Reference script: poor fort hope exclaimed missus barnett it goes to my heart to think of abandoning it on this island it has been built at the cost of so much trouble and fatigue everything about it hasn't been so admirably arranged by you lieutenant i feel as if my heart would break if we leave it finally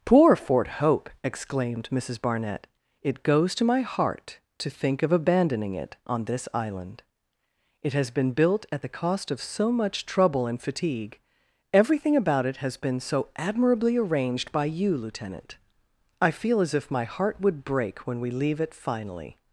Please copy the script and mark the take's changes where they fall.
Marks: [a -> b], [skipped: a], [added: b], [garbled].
poor fort hope exclaimed missus barnett it goes to my heart to think of abandoning it on this island it has been built at the cost of so much trouble and fatigue everything about it [hasn't -> has] been so admirably arranged by you lieutenant i feel as if my heart would break [if -> when] we leave it finally